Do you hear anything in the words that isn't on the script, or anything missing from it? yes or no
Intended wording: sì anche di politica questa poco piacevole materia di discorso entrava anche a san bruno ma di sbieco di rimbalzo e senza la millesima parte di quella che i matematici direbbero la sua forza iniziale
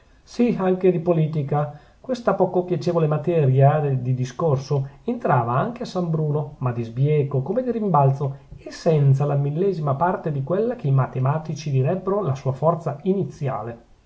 yes